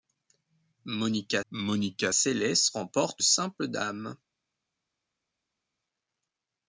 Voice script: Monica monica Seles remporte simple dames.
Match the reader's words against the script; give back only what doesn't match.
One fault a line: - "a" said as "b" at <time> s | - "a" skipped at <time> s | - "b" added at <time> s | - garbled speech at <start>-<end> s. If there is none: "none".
none